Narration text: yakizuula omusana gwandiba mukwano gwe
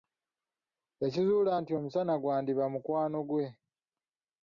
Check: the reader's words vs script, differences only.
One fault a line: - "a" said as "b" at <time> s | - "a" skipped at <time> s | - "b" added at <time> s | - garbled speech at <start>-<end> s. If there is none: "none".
- "nti" added at 1.6 s